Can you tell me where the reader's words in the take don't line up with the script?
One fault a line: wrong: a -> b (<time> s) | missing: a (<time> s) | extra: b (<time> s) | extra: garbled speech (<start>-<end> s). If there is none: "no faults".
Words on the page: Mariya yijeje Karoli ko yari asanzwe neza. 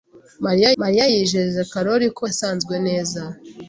extra: mariya (0.8 s)
missing: yari (2.2 s)